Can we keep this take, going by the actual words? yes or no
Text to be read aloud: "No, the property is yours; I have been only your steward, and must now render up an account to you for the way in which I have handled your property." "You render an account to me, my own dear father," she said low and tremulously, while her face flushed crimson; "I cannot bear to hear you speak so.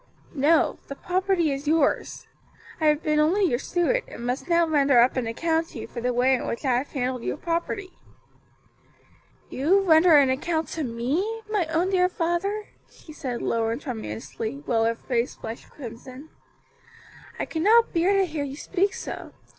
yes